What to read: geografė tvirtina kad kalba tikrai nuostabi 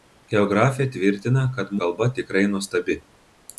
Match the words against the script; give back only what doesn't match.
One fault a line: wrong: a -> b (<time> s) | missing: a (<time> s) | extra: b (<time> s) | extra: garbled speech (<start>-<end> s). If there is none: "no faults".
no faults